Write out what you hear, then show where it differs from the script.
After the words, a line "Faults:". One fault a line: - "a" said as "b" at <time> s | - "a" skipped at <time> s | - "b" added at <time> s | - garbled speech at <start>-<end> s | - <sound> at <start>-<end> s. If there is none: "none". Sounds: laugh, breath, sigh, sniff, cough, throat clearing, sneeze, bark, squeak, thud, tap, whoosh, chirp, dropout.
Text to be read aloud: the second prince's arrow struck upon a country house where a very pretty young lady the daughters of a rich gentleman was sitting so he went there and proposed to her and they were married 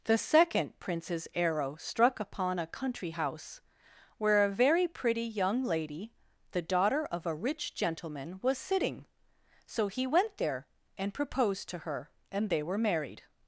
the second prince's arrow struck upon a country house where a very pretty young lady the daughter of a rich gentleman was sitting so he went there and proposed to her and they were married
Faults:
- "daughters" said as "daughter" at 6.6 s